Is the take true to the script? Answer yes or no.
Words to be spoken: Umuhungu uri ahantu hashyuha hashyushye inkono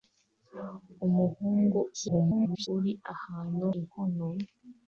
no